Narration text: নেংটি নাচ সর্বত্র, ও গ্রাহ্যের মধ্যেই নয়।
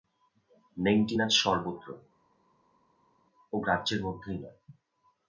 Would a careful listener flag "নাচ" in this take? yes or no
no